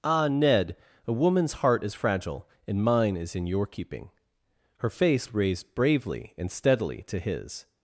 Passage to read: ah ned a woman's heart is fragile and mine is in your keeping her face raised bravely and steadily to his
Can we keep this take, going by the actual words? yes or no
yes